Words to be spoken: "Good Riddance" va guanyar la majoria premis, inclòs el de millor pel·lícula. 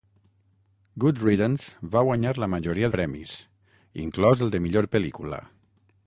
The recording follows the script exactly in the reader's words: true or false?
true